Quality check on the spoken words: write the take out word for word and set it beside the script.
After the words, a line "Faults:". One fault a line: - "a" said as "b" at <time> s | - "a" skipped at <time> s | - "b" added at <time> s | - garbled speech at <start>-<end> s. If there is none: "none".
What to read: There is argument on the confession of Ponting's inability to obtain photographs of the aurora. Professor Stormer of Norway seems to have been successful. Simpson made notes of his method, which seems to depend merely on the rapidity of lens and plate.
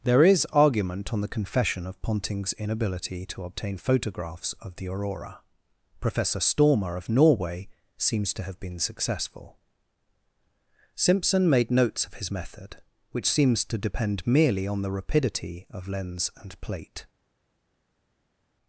There is argument on the confession of Ponting's inability to obtain photographs of the aurora. Professor Stormer of Norway seems to have been successful. Simpson made notes of his method, which seems to depend merely on the rapidity of lens and plate.
Faults:
none